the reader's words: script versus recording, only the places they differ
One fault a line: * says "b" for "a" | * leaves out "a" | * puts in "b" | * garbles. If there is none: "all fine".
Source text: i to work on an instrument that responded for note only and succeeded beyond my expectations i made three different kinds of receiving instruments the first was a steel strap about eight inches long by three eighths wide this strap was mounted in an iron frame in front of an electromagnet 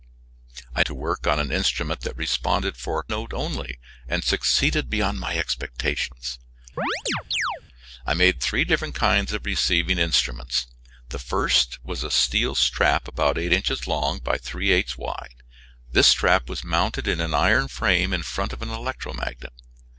all fine